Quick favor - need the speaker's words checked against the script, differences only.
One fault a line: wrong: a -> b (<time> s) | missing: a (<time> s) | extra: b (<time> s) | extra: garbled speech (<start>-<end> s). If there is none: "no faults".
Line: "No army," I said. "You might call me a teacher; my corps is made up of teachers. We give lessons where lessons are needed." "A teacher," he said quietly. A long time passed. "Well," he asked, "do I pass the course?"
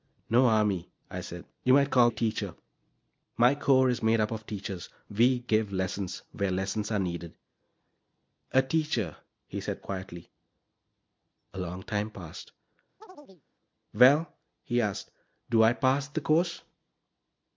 missing: me (2.1 s)